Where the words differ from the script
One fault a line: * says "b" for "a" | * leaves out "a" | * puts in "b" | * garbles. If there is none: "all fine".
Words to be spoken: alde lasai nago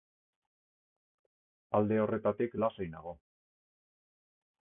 * puts in "horretatik"